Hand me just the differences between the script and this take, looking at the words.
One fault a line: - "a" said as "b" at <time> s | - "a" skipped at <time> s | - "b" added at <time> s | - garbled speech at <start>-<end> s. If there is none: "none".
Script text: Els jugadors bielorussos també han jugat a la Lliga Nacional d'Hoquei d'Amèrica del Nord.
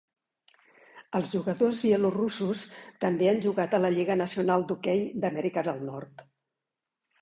none